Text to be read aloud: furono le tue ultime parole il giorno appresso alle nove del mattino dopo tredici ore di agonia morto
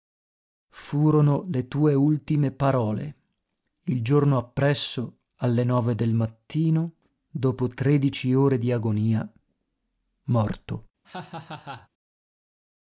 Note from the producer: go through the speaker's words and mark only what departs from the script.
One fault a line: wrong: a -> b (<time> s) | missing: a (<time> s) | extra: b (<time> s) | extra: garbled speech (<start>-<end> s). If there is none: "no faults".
no faults